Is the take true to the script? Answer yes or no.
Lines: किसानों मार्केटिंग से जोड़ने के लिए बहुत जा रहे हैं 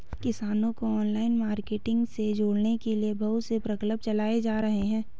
no